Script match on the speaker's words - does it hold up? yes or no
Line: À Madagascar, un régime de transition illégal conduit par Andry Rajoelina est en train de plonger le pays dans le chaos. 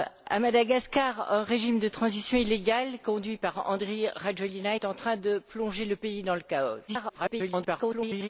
no